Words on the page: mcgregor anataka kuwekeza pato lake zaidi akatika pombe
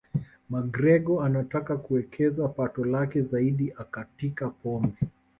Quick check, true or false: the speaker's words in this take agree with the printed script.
true